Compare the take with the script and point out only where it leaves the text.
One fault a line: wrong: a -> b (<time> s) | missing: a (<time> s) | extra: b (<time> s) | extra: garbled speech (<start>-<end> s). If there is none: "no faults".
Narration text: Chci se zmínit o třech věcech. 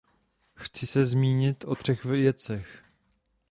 no faults